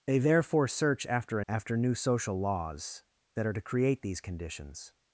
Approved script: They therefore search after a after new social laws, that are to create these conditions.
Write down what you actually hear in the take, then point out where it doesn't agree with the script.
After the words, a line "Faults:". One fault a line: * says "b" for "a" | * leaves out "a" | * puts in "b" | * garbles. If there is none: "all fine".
They therefore search after a after new social laws, that are to create these conditions.
Faults:
all fine